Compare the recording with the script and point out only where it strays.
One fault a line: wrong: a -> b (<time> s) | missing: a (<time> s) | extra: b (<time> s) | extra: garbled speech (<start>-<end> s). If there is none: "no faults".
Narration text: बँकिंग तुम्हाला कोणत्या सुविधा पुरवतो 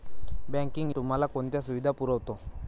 no faults